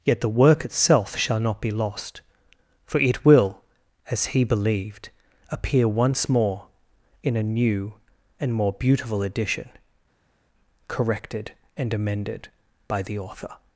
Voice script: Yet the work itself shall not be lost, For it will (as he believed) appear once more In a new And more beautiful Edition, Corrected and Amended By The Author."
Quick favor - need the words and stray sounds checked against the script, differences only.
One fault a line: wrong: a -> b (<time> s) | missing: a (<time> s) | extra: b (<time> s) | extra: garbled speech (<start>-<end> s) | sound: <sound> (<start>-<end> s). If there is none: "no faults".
no faults